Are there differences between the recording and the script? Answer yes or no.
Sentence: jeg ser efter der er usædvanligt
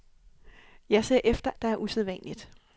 no